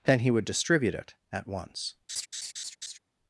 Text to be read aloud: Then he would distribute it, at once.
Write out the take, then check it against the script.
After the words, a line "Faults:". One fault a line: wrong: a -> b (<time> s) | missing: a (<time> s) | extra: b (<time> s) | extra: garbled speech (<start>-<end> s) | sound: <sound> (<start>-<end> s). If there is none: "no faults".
Then he would distribute it, at once.
Faults:
sound: laugh (2.1-3.0 s)